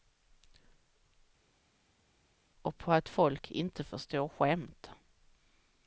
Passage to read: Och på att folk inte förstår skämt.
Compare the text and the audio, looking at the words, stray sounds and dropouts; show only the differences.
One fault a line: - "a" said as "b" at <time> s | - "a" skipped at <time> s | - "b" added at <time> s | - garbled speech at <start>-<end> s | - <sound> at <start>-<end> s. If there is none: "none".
none